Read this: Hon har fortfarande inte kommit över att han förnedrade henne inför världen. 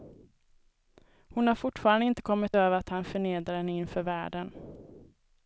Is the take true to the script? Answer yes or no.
yes